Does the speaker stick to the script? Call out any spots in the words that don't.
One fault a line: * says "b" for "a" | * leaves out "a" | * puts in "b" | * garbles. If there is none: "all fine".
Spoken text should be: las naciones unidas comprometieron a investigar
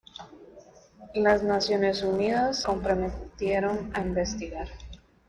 all fine